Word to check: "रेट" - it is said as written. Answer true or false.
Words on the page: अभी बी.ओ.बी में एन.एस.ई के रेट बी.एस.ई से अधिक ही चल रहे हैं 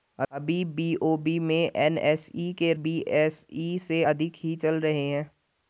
false